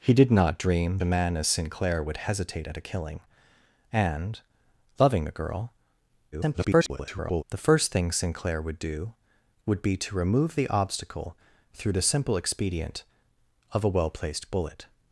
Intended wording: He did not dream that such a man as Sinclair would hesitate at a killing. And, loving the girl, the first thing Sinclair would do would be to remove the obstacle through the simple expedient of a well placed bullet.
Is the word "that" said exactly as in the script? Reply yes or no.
no